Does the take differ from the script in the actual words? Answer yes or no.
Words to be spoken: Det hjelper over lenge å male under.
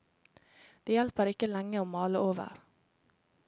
yes